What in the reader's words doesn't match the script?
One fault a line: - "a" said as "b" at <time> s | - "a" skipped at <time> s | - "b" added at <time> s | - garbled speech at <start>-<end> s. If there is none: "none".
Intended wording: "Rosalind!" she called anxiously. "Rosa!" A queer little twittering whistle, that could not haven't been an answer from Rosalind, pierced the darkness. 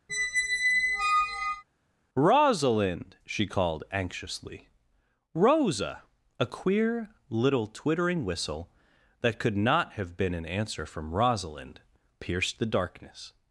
- "haven't" said as "have" at 9.9 s